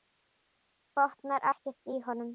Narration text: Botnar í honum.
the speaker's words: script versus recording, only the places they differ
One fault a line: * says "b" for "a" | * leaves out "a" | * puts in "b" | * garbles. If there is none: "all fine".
* puts in "ekkert"